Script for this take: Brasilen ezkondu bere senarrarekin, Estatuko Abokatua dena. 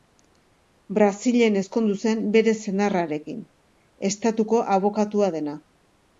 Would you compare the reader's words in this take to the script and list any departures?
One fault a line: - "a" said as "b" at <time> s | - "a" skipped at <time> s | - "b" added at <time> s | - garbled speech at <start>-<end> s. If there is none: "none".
- "zen" added at 2.0 s